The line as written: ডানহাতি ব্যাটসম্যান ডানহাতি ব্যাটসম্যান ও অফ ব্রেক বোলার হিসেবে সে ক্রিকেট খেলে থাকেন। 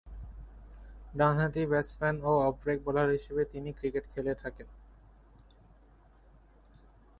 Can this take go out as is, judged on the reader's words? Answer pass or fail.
fail